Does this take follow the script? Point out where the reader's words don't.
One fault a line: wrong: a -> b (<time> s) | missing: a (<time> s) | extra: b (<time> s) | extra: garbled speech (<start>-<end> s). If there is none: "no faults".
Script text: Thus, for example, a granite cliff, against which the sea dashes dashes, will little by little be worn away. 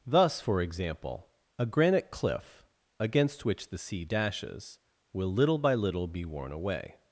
missing: dashes (4.8 s)